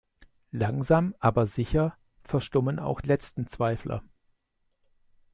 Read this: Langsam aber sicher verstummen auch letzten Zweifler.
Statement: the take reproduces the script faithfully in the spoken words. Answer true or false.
true